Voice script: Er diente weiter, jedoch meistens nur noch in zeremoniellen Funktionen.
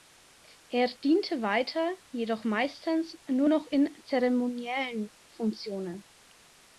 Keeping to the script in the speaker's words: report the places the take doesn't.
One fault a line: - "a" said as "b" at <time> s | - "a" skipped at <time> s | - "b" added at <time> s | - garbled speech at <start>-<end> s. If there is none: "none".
none